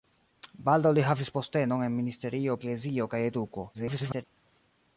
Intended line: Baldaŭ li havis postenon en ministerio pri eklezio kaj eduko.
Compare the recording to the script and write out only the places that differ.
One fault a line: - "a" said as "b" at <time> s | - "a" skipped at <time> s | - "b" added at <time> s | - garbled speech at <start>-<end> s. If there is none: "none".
- "pri" skipped at 2.6 s
- garbled speech at 3.7-4.2 s